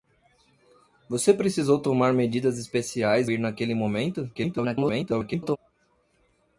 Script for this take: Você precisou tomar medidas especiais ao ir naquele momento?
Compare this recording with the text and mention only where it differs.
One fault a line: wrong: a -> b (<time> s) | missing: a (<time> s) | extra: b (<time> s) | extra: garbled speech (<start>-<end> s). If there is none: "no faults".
missing: ao (3.3 s)
extra: garbled speech (4.3-5.6 s)